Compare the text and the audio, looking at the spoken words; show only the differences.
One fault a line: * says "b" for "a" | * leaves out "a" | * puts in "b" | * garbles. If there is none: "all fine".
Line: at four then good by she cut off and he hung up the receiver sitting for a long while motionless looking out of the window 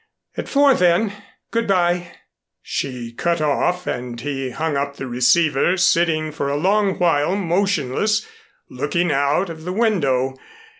all fine